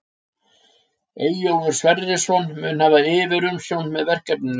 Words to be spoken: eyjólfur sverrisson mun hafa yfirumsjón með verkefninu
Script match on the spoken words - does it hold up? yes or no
yes